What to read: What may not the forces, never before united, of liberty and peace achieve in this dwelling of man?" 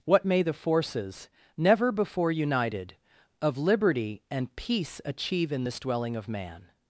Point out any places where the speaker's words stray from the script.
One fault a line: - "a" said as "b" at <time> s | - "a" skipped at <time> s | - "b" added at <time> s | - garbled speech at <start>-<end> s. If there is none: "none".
- "not" skipped at 0.4 s